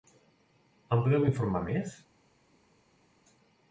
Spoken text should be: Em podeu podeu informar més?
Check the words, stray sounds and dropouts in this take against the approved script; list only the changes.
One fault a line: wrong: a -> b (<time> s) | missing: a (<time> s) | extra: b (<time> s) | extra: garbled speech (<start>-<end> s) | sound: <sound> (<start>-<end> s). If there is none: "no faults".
missing: podeu (1.3 s)